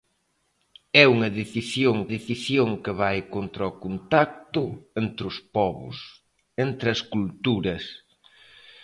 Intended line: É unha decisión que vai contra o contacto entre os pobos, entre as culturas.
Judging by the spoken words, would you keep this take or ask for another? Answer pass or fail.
fail